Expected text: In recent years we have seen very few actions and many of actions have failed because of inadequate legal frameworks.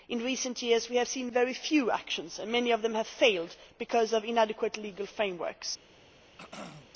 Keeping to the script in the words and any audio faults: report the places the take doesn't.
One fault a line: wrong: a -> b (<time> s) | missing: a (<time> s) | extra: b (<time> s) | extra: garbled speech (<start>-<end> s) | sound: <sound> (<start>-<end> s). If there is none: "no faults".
wrong: actions -> them (2.8 s)
sound: throat clearing (6.4-6.9 s)